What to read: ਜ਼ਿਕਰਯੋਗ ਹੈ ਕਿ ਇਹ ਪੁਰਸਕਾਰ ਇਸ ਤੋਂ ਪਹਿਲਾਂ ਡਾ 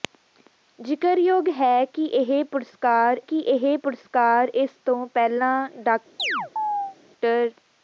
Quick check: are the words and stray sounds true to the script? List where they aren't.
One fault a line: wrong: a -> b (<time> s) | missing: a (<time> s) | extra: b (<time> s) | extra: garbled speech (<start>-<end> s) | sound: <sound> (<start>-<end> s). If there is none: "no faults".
extra: ਕਿ ਇਹ ਪੁਰਸਕਾਰ (3.2 s)
sound: chirp (6.2-7.0 s)